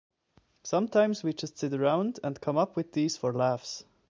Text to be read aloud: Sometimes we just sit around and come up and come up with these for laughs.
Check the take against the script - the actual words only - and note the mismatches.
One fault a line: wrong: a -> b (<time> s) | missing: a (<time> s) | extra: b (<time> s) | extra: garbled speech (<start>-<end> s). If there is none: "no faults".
missing: and come up (2.8 s)